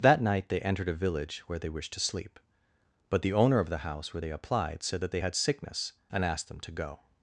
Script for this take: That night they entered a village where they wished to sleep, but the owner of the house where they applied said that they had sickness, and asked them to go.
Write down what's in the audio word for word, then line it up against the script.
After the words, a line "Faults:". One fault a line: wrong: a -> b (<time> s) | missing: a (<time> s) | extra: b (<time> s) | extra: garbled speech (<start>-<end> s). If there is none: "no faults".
That night they entered a village where they wished to sleep, but the owner of the house where they applied said that they had sickness, and asked them to go.
Faults:
no faults